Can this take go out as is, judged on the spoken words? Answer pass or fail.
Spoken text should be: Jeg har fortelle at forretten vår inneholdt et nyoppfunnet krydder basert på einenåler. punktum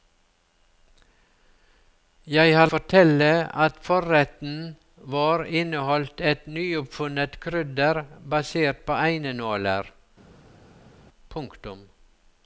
pass